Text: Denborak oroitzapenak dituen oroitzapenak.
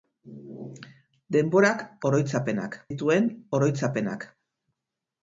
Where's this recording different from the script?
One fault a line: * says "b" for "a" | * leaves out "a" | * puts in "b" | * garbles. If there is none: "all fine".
all fine